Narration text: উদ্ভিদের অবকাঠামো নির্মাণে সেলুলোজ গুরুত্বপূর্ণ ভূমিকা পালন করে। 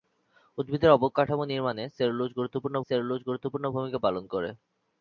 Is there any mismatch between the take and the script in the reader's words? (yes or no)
yes